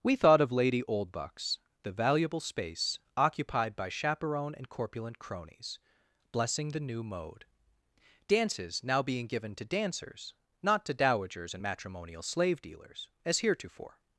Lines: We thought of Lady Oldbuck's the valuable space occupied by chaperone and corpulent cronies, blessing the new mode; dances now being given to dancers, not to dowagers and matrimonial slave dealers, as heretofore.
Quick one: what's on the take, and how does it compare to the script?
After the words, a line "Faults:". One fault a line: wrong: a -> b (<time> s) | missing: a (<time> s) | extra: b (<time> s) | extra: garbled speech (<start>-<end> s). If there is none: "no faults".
We thought of Lady Oldbuck's the valuable space occupied by chaperone and corpulent cronies, blessing the new mode; dances now being given to dancers, not to dowagers and matrimonial slave dealers, as heretofore.
Faults:
no faults